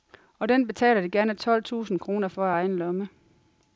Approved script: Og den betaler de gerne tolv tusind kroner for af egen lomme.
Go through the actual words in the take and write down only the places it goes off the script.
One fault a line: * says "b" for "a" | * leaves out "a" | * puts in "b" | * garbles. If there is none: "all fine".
all fine